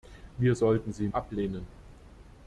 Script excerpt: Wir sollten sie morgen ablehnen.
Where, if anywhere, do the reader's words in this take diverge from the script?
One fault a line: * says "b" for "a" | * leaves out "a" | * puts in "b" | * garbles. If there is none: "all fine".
* leaves out "morgen"